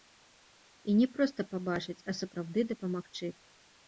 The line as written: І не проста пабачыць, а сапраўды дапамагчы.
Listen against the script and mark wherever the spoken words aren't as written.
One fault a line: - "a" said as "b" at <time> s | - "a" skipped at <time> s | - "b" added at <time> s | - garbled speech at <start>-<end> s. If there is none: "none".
none